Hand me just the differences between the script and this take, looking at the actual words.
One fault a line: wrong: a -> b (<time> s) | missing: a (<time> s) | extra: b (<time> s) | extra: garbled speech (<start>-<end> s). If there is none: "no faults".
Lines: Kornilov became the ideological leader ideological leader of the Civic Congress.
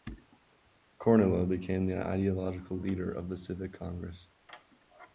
missing: ideological leader (3.1 s)